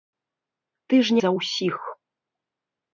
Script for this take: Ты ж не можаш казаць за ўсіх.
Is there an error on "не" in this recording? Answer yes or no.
yes